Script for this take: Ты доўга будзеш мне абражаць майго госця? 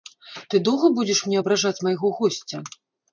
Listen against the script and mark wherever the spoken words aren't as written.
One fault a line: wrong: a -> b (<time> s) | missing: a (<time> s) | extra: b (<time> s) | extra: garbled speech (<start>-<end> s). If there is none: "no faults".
no faults